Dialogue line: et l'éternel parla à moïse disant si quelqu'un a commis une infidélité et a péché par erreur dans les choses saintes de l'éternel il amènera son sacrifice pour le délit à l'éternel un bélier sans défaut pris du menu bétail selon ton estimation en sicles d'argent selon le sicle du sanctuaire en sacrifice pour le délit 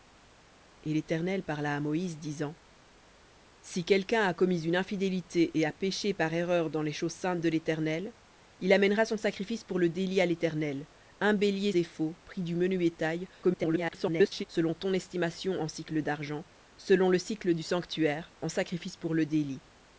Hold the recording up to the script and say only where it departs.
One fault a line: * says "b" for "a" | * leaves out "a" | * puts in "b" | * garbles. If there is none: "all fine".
* leaves out "sans"
* garbles